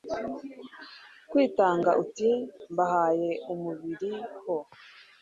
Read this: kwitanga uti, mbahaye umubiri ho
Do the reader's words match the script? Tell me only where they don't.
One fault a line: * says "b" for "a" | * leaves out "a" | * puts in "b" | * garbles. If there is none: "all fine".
all fine